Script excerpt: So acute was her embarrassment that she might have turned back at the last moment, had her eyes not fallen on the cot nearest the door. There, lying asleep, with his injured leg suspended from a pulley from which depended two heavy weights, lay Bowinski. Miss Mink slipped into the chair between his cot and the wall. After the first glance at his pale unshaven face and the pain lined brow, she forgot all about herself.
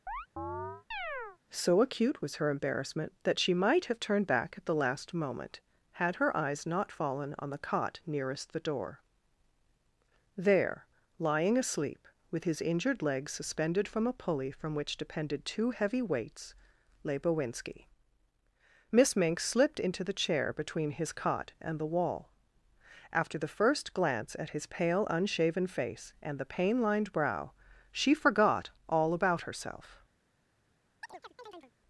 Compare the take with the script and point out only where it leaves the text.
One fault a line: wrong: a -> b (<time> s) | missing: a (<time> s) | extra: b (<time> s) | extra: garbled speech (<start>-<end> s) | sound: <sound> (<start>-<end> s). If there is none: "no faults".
sound: chirp (0.1-1.4 s)
sound: chirp (31.0-31.7 s)